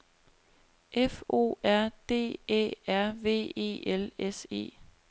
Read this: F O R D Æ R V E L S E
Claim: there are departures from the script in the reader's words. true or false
false